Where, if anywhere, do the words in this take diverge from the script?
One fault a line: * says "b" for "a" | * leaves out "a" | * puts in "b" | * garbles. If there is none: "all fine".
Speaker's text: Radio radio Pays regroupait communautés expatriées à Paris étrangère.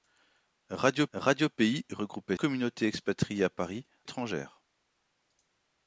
all fine